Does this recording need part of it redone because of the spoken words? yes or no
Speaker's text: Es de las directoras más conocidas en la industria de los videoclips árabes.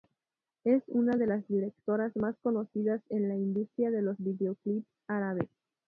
yes